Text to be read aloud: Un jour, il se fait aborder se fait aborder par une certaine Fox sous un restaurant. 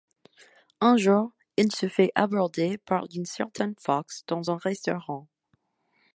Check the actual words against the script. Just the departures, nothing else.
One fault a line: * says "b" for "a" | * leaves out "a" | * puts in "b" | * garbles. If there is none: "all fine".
* leaves out "se fait aborder"
* says "dans" for "sous"